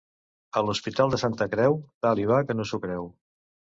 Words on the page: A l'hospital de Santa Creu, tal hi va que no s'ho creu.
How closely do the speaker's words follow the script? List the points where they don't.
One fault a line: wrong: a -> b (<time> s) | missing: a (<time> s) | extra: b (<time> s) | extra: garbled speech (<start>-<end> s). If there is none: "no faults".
no faults